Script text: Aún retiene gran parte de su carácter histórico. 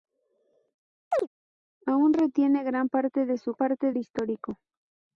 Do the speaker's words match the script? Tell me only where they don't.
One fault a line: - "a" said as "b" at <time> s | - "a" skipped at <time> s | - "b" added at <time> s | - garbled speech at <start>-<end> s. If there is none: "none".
- "carácter" said as "parte" at 3.5 s